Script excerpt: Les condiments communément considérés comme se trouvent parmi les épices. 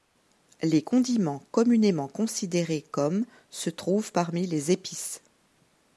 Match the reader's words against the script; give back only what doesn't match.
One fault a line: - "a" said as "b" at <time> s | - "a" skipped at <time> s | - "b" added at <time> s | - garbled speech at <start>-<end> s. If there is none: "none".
none